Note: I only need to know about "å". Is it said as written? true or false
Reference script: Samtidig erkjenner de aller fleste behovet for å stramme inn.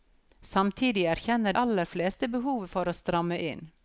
true